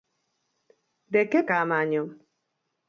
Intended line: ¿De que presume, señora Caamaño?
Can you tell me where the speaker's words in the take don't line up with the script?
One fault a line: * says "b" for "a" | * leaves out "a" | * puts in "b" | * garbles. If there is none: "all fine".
* leaves out "presume señora"